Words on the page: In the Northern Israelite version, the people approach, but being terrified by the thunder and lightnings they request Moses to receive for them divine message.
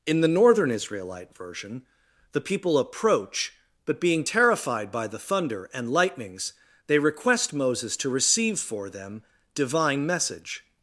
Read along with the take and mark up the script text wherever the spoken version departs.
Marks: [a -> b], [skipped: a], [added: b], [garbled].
In the Northern Israelite version, the people approach, but being terrified by the thunder and lightnings they request Moses to receive for them divine message.